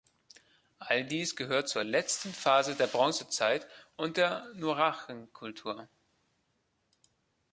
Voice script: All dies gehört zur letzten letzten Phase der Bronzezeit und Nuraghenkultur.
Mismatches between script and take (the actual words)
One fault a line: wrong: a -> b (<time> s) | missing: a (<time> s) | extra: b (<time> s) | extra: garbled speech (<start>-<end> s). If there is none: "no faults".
missing: letzten (2.3 s)
extra: der (4.1 s)